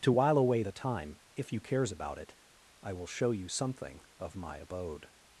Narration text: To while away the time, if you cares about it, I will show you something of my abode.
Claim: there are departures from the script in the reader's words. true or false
false